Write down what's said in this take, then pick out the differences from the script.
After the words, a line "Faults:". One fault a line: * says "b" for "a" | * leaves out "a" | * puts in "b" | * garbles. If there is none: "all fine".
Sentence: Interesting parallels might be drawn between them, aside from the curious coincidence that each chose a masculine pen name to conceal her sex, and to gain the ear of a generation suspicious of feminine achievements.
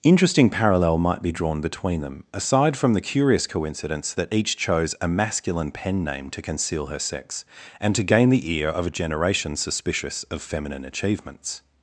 Interesting parallel might be drawn between them, aside from the curious coincidence that each chose a masculine pen name to conceal her sex, and to gain the ear of a generation suspicious of feminine achievements.
Faults:
* says "parallel" for "parallels"